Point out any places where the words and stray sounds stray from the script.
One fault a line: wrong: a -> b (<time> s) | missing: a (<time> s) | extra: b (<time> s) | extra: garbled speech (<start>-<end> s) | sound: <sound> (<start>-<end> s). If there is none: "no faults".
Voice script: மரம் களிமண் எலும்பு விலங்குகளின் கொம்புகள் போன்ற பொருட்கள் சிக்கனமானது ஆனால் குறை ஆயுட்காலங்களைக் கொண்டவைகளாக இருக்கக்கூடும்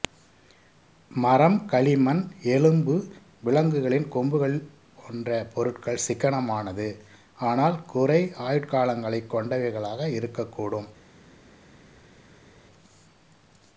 no faults